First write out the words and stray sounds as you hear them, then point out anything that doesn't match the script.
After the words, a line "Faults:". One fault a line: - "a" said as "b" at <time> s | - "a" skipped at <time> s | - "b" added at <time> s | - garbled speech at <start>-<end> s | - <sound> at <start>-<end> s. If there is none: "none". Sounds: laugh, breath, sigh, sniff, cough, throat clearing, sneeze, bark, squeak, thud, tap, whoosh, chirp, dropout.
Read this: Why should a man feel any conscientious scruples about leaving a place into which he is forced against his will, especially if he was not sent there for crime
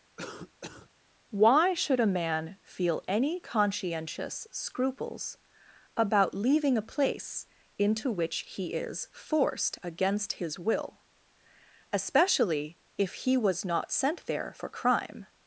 Why should a man feel any conscientious scruples about leaving a place into which he is forced against his will, especially if he was not sent there for crime
Faults:
- cough at 0.2-0.9 s